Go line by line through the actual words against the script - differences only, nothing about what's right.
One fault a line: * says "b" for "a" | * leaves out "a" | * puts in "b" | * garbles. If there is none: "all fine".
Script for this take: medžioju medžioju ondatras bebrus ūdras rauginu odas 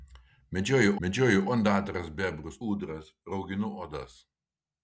all fine